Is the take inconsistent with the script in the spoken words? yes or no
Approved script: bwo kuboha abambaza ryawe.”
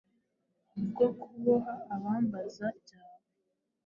no